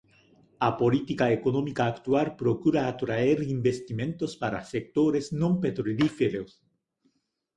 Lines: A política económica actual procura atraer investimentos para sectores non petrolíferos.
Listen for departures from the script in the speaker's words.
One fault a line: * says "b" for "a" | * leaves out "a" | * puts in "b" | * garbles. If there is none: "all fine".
all fine